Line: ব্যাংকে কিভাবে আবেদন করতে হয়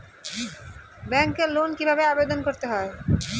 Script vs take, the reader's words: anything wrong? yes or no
yes